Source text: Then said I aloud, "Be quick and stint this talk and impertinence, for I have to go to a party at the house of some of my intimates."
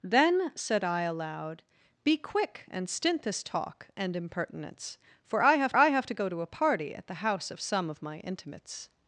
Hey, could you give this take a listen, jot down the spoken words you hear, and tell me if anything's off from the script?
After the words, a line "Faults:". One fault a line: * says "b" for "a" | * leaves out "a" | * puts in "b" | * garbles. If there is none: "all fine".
Then said I aloud, "Be quick and stint this talk and impertinence, for I have I have to go to a party at the house of some of my intimates."
Faults:
* puts in "I have"